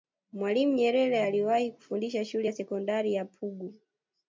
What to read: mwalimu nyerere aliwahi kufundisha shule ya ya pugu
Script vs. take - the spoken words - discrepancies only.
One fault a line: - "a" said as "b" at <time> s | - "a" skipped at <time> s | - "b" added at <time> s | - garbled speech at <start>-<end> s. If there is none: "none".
- "sekondari" added at 2.5 s